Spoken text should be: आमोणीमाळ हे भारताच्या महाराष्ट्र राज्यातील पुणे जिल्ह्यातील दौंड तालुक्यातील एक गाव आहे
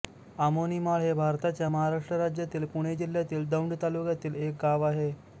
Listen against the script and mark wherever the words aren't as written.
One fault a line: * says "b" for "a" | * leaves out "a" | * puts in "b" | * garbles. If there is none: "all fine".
all fine